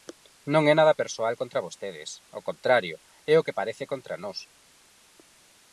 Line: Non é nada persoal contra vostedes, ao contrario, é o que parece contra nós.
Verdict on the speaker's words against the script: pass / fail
pass